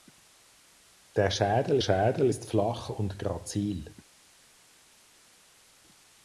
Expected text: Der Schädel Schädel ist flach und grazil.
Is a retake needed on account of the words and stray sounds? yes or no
no